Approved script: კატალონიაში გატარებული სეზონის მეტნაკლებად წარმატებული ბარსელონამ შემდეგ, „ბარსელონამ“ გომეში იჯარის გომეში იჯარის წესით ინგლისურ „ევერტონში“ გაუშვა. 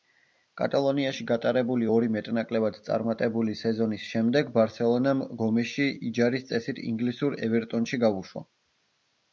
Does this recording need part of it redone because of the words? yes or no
yes